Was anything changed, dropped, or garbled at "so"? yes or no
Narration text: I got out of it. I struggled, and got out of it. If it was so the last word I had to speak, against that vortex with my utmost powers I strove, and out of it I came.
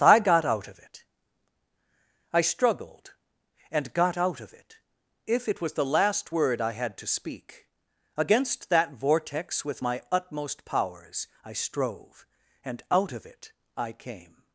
yes